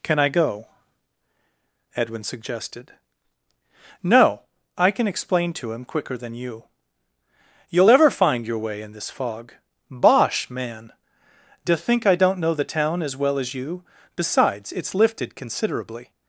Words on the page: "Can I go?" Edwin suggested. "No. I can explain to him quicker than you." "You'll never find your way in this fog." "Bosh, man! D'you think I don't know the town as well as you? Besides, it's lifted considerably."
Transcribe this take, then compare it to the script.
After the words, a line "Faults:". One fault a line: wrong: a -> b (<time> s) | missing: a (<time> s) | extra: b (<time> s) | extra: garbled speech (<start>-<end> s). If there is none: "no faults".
"Can I go?" Edwin suggested. "No. I can explain to him quicker than you." "You'll ever find your way in this fog." "Bosh, man! D'you think I don't know the town as well as you? Besides, it's lifted considerably."
Faults:
wrong: never -> ever (7.9 s)